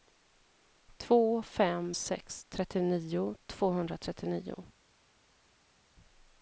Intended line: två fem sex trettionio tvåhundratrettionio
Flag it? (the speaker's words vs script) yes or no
no